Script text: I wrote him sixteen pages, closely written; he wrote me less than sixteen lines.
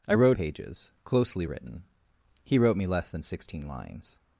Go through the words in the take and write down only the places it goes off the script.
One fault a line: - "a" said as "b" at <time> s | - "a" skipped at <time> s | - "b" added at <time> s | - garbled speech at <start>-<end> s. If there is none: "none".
- "him sixteen" skipped at 0.4 s